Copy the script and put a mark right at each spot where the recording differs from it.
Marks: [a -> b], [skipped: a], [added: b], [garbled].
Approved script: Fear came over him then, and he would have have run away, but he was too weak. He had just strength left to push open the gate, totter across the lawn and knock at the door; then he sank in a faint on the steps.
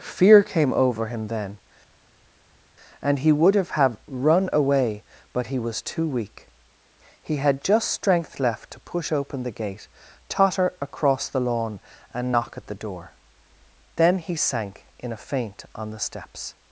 Fear came over him then, and he would have have run away, but he was too weak. He had just strength left to push open the gate, totter across the lawn and knock at the door; then he sank in a faint on the steps.